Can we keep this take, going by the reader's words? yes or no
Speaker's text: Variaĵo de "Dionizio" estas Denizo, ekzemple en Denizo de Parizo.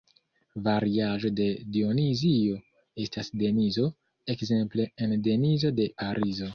yes